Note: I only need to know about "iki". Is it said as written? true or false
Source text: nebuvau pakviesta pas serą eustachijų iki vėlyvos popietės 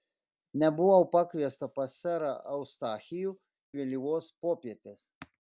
false